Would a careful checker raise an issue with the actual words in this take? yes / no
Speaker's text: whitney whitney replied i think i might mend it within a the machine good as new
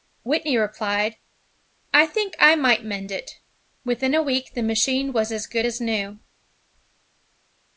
yes